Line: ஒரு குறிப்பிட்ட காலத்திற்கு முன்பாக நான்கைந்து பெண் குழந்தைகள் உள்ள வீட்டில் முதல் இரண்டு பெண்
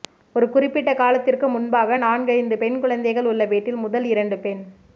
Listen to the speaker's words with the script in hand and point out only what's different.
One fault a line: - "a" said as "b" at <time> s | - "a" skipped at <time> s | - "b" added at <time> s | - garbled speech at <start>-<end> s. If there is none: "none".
none